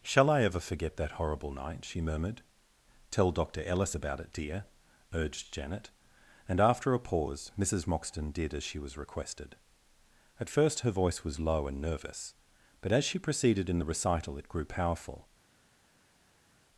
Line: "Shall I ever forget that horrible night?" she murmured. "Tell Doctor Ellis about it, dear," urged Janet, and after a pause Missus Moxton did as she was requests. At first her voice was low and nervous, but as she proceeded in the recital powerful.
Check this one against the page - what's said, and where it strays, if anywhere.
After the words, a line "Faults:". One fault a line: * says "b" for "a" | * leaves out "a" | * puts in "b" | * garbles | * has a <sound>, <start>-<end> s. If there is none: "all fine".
"Shall I ever forget that horrible night?" she murmured. "Tell Doctor Ellis about it, dear," urged Janet, and after a pause Missus Moxton did as she was requested. At first her voice was low and nervous, but as she proceeded in the recital it grew powerful.
Faults:
* says "requested" for "requests"
* puts in "it grew"